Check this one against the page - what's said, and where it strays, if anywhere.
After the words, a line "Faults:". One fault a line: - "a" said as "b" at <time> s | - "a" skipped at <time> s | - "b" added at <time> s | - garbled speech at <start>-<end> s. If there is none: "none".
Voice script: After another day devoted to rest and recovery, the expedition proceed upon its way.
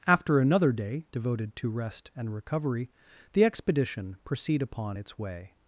After another day devoted to rest and recovery, the expedition proceed upon its way.
Faults:
none